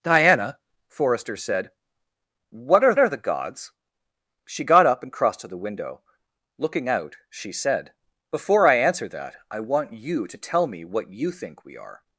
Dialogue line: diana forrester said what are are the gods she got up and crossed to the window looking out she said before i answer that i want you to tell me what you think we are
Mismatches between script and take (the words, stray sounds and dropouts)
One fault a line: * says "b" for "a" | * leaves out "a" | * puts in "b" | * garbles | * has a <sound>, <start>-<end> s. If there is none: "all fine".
all fine